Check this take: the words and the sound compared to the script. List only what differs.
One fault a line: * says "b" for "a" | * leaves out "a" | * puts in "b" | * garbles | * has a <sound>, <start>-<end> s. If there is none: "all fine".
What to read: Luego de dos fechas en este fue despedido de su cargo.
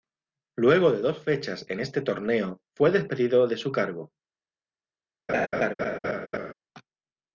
* puts in "torneo"
* has a laugh, 5.3-6.5 s